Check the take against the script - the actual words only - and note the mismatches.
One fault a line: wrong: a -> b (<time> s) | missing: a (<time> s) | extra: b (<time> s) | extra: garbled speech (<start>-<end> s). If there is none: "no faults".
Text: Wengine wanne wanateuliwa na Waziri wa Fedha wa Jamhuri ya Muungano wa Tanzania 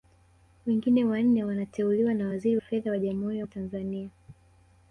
missing: wa (2.6 s)
missing: Muungano (3.5 s)